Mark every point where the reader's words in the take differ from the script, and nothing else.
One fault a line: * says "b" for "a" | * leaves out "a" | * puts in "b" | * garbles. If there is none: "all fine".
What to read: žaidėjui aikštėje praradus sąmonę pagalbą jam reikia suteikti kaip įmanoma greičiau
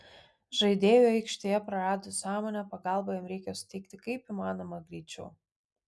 all fine